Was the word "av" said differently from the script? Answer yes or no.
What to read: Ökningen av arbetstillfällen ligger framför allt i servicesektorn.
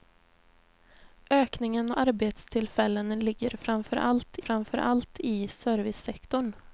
yes